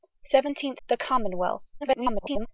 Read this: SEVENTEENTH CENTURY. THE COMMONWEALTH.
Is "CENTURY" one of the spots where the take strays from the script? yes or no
yes